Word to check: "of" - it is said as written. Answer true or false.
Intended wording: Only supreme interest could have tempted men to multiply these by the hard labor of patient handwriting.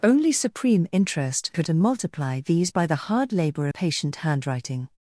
false